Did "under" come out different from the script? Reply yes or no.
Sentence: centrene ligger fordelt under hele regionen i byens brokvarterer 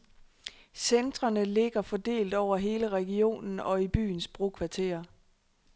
yes